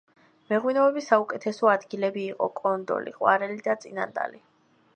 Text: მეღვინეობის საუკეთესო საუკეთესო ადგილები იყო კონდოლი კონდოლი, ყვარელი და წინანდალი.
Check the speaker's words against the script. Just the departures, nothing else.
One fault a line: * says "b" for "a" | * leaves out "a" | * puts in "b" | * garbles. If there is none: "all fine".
* leaves out "საუკეთესო"
* leaves out "კონდოლი"